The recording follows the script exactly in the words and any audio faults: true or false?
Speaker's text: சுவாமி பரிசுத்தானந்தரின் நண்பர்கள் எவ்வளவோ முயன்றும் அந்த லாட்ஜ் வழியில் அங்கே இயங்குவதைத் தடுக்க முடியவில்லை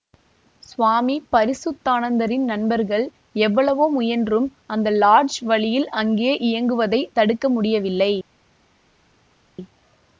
true